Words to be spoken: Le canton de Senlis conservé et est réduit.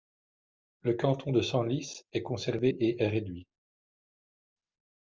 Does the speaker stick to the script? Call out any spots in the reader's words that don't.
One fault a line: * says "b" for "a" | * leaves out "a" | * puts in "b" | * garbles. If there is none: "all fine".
* puts in "est"